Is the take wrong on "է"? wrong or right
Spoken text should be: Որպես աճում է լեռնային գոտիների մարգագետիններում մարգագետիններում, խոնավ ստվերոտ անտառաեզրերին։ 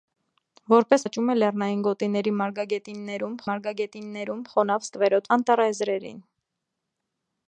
right